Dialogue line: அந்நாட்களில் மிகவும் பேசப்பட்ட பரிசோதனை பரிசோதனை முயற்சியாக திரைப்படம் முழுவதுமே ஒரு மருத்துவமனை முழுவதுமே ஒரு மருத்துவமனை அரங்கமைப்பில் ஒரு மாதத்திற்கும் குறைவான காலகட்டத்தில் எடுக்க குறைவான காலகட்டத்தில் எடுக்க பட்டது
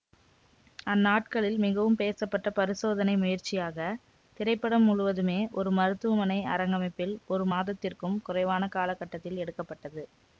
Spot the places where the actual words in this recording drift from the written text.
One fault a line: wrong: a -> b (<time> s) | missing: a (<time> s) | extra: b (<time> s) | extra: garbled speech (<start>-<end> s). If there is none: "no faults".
missing: பரிசோதனை (3.1 s)
missing: முழுவதுமே ஒரு மருத்துவமனை (6.4 s)
missing: குறைவான காலகட்டத்தில் எடுக்க (9.6 s)